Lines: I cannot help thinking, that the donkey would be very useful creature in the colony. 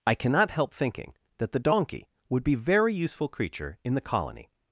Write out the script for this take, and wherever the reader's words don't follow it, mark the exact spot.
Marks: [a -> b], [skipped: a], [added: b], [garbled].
I cannot help thinking, that the donkey would be very useful creature in the colony.